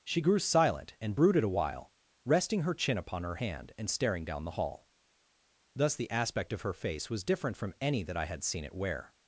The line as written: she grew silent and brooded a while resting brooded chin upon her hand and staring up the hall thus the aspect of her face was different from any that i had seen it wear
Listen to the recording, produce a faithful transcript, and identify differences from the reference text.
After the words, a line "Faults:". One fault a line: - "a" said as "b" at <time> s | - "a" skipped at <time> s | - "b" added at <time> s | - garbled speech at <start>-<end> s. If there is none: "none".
she grew silent and brooded a while resting her chin upon her hand and staring down the hall thus the aspect of her face was different from any that i had seen it wear
Faults:
- "brooded" said as "her" at 2.6 s
- "up" said as "down" at 4.2 s